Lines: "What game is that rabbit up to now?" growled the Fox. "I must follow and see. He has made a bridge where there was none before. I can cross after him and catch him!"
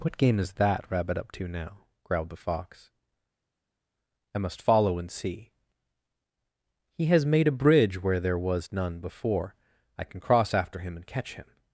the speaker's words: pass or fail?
pass